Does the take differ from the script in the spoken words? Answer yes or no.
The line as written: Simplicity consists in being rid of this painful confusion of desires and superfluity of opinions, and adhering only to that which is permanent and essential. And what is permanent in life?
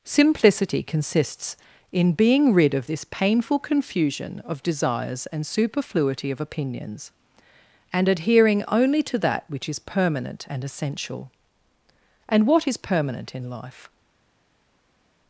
no